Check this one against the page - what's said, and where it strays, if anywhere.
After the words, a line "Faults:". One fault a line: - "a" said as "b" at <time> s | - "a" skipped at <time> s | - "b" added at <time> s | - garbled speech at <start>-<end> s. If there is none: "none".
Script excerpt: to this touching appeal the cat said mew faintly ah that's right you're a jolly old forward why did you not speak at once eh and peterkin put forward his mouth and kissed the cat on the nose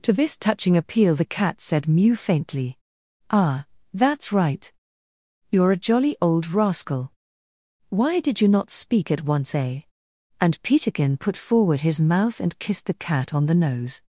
to this touching appeal the cat said mew faintly ah that's right you're a jolly old rascal why did you not speak at once eh and peterkin put forward his mouth and kissed the cat on the nose
Faults:
- "forward" said as "rascal" at 6.5 s